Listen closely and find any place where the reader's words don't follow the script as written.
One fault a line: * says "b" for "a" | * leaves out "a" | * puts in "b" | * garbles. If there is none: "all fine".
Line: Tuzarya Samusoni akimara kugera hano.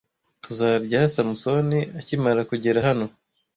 all fine